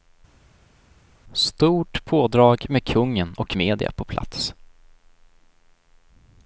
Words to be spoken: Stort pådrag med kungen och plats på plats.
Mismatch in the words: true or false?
true